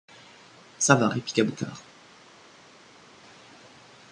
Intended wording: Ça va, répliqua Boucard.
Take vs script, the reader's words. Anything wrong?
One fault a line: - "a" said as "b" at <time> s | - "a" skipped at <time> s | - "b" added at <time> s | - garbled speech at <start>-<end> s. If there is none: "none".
none